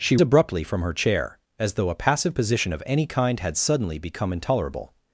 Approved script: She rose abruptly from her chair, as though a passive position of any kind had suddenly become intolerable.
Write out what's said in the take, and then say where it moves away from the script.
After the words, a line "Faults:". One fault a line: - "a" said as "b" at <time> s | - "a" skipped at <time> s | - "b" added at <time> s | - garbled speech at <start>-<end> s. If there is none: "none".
She abruptly from her chair, as though a passive position of any kind had suddenly become intolerable.
Faults:
- "rose" skipped at 0.2 s